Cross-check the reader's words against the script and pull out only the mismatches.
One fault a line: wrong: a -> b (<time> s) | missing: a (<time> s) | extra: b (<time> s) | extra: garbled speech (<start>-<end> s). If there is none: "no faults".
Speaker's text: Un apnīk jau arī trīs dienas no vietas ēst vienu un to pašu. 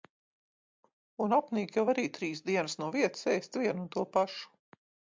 no faults